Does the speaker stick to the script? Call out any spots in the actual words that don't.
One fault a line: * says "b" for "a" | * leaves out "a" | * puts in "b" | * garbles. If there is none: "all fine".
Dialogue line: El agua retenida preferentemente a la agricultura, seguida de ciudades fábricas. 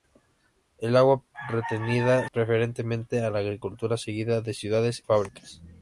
all fine